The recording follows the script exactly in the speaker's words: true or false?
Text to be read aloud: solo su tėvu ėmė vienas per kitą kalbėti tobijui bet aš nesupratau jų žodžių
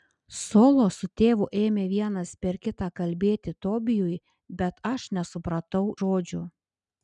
false